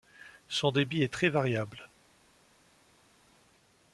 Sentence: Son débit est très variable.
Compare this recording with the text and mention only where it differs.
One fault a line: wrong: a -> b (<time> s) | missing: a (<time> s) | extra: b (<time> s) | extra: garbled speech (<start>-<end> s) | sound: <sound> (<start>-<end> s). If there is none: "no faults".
no faults